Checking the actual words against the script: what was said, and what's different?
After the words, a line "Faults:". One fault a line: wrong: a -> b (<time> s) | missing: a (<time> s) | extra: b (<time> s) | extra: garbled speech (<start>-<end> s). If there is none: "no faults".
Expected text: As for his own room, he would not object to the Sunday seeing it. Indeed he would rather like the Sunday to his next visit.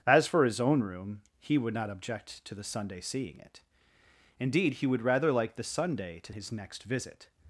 As for his own room, he would not object to the Sunday seeing it. Indeed he would rather like the Sunday to his next visit.
Faults:
no faults